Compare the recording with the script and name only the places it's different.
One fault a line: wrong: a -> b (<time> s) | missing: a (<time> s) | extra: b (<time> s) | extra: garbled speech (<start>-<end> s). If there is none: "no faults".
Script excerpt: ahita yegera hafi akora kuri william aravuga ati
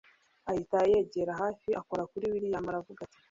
no faults